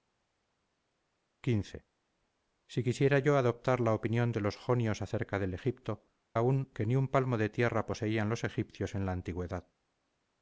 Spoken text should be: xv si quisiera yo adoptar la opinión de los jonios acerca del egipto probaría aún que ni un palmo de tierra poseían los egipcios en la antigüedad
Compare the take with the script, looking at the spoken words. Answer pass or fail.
fail